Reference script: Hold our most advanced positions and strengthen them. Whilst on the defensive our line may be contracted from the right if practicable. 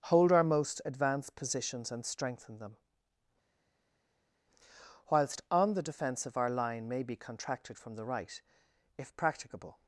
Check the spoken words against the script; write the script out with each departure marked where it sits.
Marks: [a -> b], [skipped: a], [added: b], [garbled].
Hold our most advanced positions and strengthen them. Whilst on the defensive our line may be contracted from the right if practicable.